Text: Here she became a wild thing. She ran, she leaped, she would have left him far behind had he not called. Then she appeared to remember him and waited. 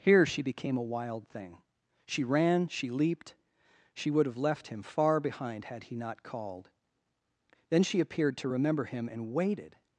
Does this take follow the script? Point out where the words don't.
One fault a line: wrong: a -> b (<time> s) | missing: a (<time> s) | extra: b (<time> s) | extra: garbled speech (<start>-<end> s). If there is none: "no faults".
no faults